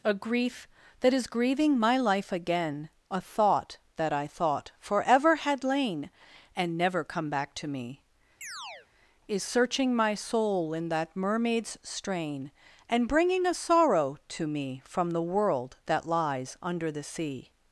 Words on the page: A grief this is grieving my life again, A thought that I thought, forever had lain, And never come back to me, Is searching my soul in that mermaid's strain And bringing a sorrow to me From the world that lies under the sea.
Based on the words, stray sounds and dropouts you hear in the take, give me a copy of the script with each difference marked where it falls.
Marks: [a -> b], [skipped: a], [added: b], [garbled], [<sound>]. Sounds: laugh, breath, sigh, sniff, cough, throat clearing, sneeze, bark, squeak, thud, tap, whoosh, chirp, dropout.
A grief [this -> that] is grieving my life again, A thought that I thought, forever had lain, And never come back to me, [chirp] Is searching my soul in that mermaid's strain And bringing a sorrow to me From the world that lies under the sea.